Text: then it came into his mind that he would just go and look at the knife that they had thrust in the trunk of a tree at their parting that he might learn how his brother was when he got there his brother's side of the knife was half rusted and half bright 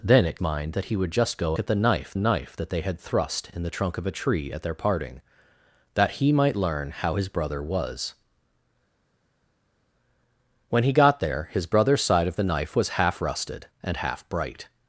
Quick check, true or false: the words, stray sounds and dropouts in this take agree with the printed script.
false